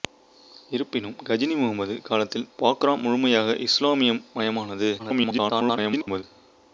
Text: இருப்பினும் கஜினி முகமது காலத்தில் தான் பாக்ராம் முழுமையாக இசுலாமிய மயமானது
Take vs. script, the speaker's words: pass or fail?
fail